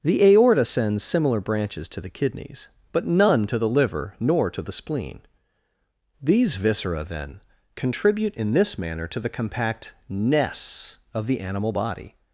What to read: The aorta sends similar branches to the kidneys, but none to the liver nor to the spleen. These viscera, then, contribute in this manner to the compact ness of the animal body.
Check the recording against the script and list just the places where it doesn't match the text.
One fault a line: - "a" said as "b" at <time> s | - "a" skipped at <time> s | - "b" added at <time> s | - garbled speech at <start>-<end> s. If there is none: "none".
none